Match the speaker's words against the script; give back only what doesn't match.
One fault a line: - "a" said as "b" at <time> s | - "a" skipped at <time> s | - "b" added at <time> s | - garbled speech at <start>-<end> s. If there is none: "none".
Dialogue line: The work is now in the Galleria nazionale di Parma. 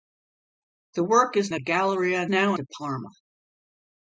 - "now in" skipped at 1.5 s
- "nazionale" said as "now" at 2.3 s